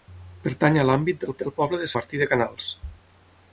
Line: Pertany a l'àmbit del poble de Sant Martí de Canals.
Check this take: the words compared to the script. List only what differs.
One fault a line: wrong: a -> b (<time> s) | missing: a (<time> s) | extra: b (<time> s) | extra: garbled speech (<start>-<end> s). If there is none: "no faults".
extra: del (1.4 s)
missing: Sant (1.9 s)